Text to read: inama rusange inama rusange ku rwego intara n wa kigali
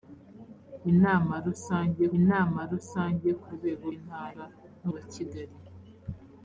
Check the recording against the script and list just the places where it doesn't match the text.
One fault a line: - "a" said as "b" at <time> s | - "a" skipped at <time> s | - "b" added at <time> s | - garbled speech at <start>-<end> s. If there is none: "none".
none